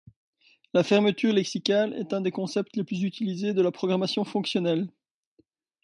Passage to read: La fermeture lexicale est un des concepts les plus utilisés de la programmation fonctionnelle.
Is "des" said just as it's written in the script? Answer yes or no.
yes